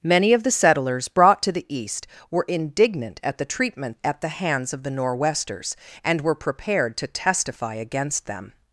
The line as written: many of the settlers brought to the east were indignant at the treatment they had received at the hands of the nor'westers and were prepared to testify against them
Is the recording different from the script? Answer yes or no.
yes